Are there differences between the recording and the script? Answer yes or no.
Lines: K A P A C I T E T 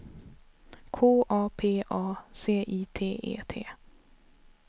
no